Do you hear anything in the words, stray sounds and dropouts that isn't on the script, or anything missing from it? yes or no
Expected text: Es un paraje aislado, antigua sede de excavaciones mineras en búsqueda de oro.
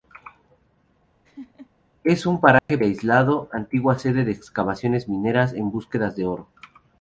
yes